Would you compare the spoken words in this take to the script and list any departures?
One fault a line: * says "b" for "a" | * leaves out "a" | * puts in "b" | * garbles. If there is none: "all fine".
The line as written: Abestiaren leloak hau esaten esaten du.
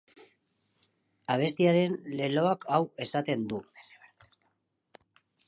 * leaves out "esaten"